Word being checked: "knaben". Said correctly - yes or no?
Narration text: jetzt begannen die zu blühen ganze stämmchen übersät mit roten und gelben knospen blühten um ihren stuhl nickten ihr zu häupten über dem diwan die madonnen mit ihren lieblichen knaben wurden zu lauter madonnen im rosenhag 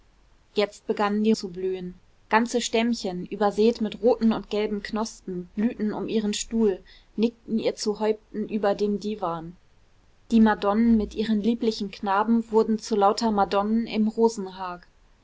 yes